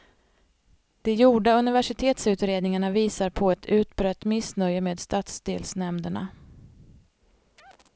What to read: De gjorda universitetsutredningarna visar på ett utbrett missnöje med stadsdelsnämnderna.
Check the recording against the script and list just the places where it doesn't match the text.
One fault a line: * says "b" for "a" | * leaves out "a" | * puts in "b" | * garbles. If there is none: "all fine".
all fine